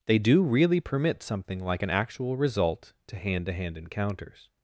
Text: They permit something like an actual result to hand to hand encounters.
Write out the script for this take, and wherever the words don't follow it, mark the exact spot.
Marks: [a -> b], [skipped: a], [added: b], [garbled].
They [added: do really] permit something like an actual result to hand to hand encounters.